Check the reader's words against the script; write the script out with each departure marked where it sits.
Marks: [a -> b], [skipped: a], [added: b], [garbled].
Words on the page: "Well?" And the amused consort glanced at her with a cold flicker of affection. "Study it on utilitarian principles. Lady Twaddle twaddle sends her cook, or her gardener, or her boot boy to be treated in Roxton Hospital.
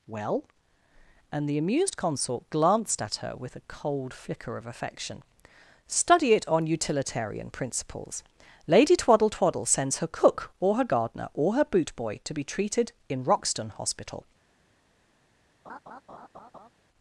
"Well?" And the amused consort glanced at her with a cold flicker of affection. "Study it on utilitarian principles. Lady Twaddle twaddle sends her cook, or her gardener, or her boot boy to be treated in Roxton Hospital.